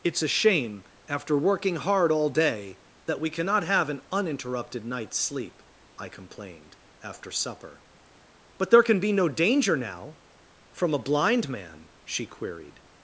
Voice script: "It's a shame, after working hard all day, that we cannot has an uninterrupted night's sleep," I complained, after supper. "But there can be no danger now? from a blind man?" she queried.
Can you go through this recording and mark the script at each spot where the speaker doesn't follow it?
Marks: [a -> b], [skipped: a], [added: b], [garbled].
"It's a shame, after working hard all day, that we cannot [has -> have] an uninterrupted night's sleep," I complained, after supper. "But there can be no danger now? from a blind man?" she queried.